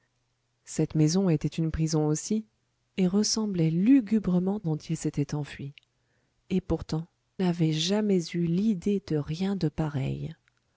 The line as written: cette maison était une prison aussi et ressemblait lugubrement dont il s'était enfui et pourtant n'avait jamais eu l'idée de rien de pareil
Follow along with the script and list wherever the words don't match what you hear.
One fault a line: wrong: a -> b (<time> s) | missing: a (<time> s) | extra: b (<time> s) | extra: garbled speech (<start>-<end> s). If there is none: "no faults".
no faults